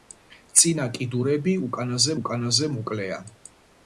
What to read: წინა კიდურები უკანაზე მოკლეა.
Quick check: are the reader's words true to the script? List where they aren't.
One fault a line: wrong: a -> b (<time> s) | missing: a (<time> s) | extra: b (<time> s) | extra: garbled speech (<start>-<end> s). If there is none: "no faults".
extra: უკანაზე (2.2 s)